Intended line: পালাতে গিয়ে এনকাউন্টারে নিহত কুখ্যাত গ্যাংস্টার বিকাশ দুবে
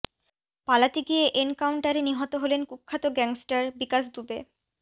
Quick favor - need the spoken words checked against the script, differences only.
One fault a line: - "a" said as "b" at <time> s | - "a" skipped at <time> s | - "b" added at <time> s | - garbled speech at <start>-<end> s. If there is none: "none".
- "হলেন" added at 2.4 s